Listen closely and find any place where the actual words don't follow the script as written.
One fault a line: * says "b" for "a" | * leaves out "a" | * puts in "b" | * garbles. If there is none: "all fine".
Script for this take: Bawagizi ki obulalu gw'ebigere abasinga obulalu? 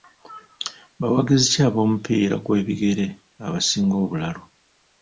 * says "ab'omupiira" for "obulalu"